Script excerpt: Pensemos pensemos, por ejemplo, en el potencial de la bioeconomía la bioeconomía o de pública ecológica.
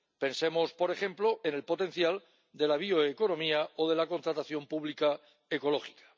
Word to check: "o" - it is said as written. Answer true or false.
false